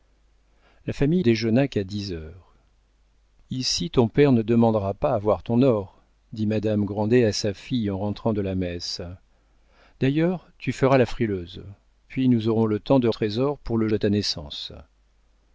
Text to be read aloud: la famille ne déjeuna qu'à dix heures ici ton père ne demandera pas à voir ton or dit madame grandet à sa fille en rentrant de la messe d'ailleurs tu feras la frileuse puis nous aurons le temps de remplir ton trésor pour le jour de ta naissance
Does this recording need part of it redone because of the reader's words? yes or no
yes